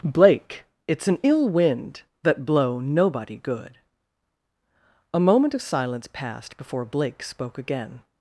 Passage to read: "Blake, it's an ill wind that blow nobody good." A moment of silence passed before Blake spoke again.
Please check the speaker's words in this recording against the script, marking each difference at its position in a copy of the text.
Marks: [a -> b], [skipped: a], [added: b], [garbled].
"Blake, it's an ill wind that blow nobody good." A moment of silence passed before Blake spoke again.